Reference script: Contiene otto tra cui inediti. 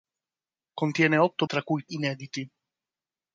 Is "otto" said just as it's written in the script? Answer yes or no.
yes